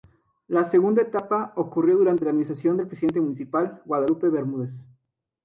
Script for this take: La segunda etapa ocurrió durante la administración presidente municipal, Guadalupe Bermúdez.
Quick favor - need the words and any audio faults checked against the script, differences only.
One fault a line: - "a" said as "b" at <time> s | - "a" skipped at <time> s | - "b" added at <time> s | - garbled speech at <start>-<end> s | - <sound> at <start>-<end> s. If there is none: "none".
- "del" added at 2.8 s